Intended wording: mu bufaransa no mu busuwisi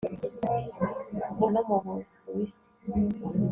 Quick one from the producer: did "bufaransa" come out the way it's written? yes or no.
no